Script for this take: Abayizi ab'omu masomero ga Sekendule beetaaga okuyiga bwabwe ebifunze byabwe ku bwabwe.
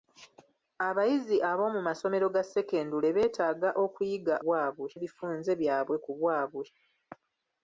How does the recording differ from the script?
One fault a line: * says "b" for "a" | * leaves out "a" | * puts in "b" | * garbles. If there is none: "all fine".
all fine